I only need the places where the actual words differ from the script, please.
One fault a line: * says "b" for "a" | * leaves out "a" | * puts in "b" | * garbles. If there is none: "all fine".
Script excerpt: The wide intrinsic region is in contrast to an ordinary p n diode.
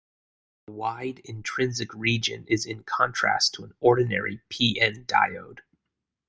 all fine